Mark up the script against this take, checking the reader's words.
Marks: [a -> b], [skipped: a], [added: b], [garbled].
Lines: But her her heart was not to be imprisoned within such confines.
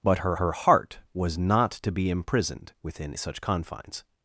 But her her heart was not to be imprisoned within such confines.